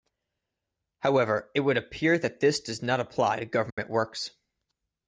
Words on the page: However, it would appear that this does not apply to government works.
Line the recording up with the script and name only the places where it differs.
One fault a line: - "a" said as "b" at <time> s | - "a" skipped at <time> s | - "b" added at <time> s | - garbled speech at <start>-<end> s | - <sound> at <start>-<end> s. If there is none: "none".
- dropout at 3.7-3.8 s